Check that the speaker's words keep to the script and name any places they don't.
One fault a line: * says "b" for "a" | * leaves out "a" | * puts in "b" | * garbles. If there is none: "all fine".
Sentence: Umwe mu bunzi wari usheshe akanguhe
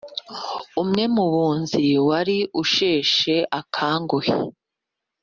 all fine